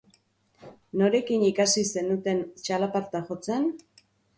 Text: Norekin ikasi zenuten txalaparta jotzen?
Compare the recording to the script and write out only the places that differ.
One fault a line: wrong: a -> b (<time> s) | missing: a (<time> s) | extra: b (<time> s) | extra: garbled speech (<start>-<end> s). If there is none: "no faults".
no faults